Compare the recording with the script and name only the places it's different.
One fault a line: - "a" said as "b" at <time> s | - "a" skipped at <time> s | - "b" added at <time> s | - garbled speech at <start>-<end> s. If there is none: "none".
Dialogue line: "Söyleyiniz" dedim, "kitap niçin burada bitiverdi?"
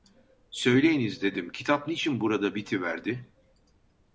none